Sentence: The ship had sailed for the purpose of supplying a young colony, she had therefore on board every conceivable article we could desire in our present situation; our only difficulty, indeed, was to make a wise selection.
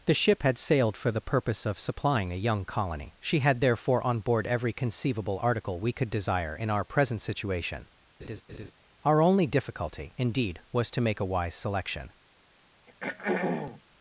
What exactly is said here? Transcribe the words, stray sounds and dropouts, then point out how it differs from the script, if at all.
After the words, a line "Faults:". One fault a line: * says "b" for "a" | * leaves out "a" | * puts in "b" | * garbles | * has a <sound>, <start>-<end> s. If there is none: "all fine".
The ship had sailed for the purpose of supplying a young colony, she had therefore on board every conceivable article we could desire in our present situation; our only difficulty, indeed, was to make a wise selection.
Faults:
* has a laugh, 8.2-8.7 s
* has a throat clearing, 12.9-13.8 s